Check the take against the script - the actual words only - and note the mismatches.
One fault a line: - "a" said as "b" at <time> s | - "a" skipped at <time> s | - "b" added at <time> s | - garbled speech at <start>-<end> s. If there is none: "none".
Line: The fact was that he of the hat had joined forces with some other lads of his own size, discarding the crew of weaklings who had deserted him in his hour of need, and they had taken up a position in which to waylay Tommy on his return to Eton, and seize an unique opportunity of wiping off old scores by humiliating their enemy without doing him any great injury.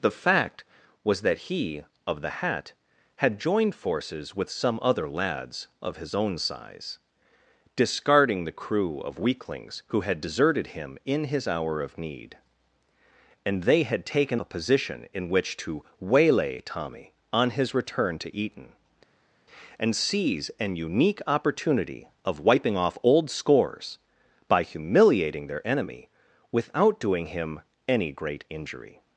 - "up" skipped at 14.4 s